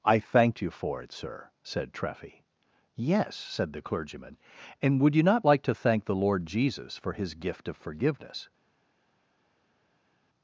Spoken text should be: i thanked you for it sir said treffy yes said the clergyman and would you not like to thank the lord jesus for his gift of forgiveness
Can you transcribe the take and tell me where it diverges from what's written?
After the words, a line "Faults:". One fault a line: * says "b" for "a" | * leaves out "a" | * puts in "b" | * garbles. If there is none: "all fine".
i thanked you for it sir said treffy yes said the clergyman and would you not like to thank the lord jesus for his gift of forgiveness
Faults:
all fine